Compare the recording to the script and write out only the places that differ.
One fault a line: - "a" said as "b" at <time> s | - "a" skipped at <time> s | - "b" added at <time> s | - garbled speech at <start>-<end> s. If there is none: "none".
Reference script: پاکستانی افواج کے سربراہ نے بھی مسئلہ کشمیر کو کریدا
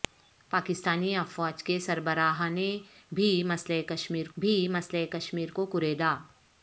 - "بھی مسئلہ کشمیر" added at 4.4 s